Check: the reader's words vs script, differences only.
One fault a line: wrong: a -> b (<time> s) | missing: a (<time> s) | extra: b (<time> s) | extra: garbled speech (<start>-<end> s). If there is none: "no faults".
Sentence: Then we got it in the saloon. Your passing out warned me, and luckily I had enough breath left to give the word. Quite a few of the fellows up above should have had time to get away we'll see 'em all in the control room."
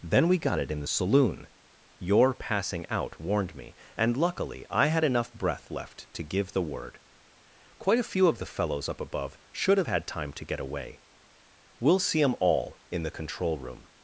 no faults